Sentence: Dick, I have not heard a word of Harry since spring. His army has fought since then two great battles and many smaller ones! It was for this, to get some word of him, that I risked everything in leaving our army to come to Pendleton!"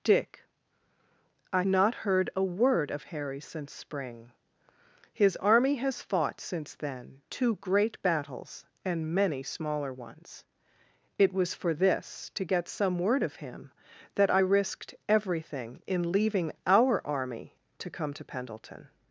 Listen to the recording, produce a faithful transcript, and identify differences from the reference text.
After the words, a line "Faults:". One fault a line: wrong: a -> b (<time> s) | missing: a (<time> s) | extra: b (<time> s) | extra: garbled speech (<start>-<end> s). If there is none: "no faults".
Dick, I not heard a word of Harry since spring. His army has fought since then two great battles and many smaller ones! It was for this, to get some word of him, that I risked everything in leaving our army to come to Pendleton!"
Faults:
missing: have (1.6 s)